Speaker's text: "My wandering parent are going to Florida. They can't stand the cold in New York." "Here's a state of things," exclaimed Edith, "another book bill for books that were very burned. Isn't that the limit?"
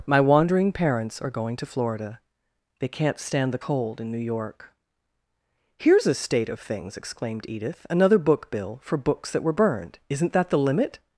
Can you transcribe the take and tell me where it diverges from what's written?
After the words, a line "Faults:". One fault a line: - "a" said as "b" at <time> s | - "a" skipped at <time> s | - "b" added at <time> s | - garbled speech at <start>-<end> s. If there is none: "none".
"My wandering parents are going to Florida. They can't stand the cold in New York." "Here's a state of things," exclaimed Edith, "another book bill for books that were burned. Isn't that the limit?"
Faults:
- "parent" said as "parents" at 0.7 s
- "very" skipped at 9.5 s